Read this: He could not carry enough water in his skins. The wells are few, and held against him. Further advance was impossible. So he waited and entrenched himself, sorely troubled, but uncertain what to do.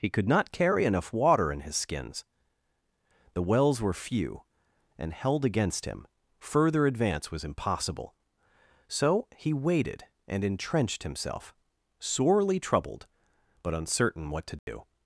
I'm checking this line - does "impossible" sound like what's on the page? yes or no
yes